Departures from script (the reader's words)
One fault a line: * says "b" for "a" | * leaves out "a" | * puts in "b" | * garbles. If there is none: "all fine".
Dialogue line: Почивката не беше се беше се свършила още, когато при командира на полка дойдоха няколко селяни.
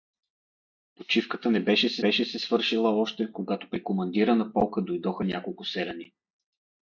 all fine